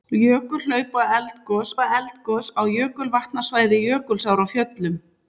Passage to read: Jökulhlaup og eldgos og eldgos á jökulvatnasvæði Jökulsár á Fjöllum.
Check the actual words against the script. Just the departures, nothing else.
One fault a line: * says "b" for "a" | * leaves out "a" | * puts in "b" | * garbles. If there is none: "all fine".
all fine